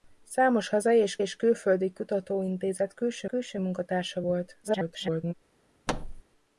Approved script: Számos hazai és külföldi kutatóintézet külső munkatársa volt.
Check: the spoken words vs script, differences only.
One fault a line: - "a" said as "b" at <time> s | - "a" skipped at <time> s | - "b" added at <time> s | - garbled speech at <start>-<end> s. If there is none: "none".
- "és" added at 1.2 s
- "külső" added at 3.2 s
- garbled speech at 4.6-5.3 s